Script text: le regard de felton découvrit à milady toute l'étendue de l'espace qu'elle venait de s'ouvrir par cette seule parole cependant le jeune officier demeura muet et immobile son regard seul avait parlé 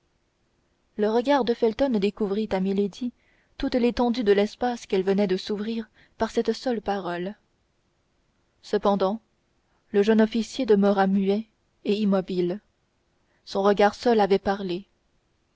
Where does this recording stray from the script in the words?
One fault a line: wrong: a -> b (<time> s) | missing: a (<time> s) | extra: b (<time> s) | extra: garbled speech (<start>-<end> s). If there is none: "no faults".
no faults